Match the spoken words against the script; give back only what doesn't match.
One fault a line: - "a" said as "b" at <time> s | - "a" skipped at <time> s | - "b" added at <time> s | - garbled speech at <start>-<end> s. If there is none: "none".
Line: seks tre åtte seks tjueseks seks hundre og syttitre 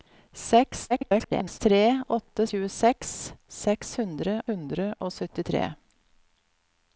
- garbled speech at 0.9-1.6 s
- "seks" skipped at 2.5 s
- "hundre" added at 4.5 s